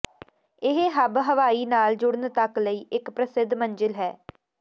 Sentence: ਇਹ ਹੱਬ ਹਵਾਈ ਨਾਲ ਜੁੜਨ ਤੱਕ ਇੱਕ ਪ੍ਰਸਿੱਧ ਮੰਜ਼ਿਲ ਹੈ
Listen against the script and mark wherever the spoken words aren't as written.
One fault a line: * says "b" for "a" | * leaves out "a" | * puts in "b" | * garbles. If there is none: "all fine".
* puts in "ਲਈ"